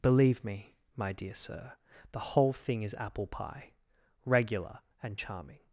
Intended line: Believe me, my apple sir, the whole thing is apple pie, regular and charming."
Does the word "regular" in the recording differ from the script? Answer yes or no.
no